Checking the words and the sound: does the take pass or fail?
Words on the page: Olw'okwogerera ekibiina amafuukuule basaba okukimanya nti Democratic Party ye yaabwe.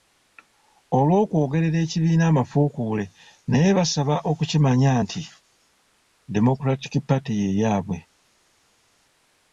fail